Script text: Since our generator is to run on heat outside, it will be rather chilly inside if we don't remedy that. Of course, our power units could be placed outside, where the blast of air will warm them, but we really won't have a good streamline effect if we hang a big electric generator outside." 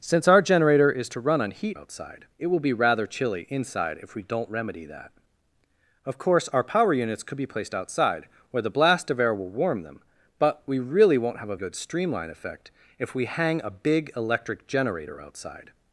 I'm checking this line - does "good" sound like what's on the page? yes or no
yes